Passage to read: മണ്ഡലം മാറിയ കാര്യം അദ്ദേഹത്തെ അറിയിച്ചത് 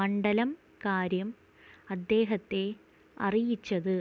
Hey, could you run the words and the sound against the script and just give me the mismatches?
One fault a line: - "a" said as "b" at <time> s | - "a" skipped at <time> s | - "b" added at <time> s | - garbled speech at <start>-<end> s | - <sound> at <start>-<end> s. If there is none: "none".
- "മാറിയ" skipped at 0.5 s